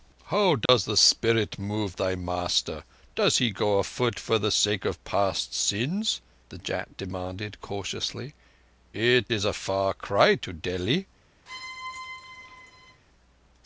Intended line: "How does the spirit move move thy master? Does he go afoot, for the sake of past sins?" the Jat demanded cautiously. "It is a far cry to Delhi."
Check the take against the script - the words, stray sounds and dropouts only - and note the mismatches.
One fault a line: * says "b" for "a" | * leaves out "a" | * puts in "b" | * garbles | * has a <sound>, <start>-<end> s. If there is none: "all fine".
* has a dropout, 0.7-0.7 s
* leaves out "move"
* has a squeak, 11.5-13.0 s